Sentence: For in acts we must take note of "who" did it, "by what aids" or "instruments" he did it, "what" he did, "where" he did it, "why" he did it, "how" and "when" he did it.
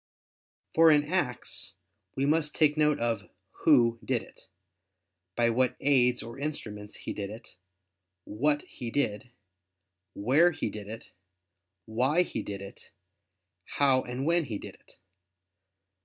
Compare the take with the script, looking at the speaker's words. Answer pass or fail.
pass